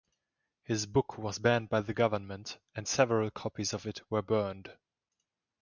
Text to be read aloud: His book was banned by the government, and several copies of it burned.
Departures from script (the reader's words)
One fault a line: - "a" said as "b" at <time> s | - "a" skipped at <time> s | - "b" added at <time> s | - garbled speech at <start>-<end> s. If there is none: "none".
- "were" added at 4.1 s